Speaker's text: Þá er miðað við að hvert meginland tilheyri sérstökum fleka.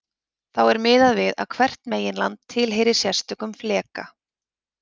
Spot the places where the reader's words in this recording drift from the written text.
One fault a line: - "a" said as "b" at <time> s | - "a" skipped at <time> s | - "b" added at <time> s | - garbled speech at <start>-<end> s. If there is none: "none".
none